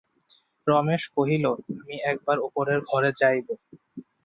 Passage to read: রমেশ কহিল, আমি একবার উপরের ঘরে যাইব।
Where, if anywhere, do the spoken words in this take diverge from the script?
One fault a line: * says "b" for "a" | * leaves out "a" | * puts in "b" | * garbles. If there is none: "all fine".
all fine